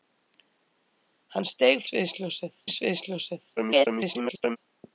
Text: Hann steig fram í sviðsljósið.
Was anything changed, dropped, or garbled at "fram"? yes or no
yes